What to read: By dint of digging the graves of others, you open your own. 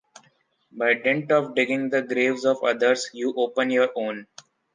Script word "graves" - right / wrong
right